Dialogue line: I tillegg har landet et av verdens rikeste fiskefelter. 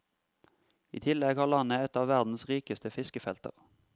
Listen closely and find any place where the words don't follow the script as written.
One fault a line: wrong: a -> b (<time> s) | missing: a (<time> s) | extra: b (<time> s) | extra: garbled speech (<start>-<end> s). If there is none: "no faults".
no faults